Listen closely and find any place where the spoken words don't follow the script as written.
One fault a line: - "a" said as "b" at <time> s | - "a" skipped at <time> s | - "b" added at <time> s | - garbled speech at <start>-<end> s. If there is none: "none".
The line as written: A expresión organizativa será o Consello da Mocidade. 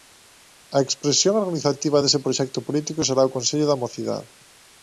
- "dese proxecto político" added at 2.0 s